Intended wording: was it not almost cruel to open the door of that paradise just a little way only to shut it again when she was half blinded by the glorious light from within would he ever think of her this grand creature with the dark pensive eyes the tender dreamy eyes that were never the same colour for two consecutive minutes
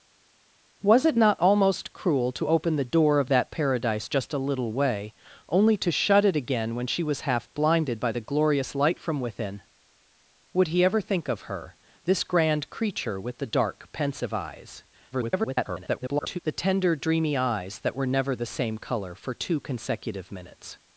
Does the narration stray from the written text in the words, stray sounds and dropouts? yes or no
yes